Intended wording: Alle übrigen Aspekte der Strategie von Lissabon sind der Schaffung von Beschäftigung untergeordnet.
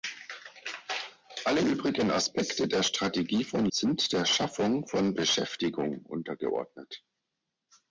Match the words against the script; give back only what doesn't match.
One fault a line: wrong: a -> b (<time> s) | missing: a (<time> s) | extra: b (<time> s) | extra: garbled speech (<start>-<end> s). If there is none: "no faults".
missing: Lissabon (3.7 s)